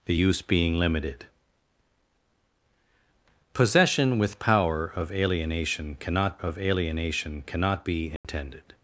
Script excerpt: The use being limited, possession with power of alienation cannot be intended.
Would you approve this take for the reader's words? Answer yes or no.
no